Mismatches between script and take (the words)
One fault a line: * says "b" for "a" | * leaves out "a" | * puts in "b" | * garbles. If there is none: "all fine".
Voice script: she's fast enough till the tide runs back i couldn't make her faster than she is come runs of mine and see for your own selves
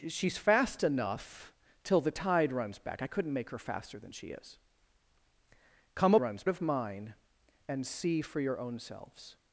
all fine